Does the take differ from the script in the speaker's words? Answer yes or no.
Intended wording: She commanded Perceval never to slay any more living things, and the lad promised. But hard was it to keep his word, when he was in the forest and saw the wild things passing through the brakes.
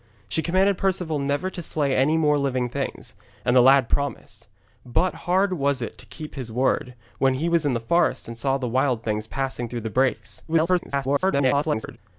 yes